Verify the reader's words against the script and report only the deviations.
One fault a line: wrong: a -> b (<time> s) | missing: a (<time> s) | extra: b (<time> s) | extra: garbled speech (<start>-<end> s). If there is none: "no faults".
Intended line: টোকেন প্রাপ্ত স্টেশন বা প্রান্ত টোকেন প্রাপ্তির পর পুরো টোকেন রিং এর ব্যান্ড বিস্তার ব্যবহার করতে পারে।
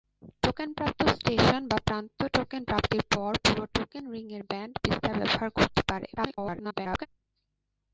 extra: garbled speech (6.2-7.1 s)